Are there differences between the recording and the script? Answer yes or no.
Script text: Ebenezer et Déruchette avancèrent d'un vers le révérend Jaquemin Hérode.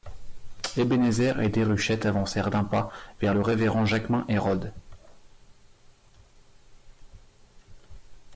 yes